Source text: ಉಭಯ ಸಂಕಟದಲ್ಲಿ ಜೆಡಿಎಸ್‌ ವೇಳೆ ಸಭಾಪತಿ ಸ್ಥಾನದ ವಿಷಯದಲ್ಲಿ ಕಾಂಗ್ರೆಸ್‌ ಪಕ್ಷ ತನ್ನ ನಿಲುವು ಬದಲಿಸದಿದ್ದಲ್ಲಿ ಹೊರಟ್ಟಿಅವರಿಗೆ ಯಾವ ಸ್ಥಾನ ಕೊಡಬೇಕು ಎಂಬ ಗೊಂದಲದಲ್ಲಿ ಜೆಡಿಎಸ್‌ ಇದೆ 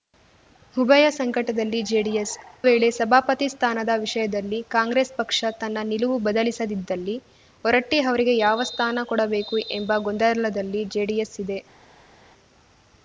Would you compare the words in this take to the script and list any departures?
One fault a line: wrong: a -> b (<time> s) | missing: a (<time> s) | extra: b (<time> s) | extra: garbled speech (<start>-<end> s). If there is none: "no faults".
no faults